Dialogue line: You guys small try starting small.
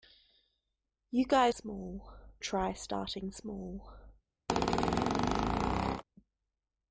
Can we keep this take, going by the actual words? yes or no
yes